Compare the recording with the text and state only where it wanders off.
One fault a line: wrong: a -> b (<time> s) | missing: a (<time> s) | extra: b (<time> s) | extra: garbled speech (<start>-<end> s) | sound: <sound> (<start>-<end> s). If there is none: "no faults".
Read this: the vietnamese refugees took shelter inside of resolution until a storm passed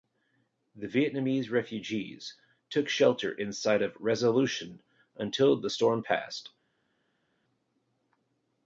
wrong: a -> the (5.6 s)